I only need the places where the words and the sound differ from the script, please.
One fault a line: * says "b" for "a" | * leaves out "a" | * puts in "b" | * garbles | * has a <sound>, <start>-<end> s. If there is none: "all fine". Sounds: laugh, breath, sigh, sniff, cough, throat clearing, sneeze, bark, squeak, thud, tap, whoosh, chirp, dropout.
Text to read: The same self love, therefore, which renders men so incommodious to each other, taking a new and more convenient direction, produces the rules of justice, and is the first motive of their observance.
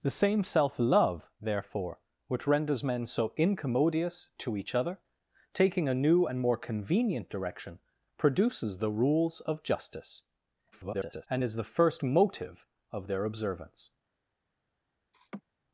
* garbles
* has a laugh, 15.1-15.4 s